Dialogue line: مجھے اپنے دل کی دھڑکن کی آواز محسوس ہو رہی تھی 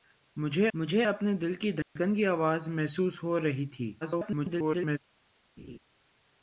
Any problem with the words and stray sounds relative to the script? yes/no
yes